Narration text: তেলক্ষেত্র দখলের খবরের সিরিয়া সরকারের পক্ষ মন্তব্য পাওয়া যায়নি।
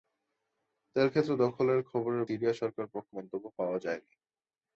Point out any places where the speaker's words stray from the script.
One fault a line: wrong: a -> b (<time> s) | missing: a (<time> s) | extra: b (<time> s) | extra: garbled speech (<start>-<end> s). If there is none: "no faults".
no faults